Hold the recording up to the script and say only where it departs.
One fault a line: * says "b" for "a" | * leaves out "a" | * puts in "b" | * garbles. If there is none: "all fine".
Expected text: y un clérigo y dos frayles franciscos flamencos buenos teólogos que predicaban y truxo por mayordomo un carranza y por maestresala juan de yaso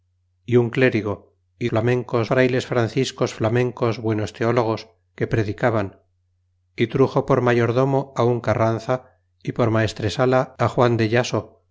* says "flamencos" for "dos"